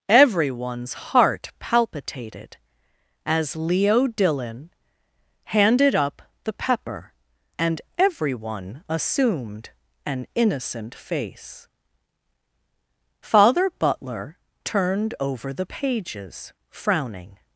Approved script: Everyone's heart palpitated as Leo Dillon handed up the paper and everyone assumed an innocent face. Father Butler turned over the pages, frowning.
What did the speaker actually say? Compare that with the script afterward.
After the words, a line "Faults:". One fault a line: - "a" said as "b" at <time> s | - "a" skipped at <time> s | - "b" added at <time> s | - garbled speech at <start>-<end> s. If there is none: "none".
Everyone's heart palpitated as Leo Dillon handed up the pepper and everyone assumed an innocent face. Father Butler turned over the pages, frowning.
Faults:
- "paper" said as "pepper" at 6.5 s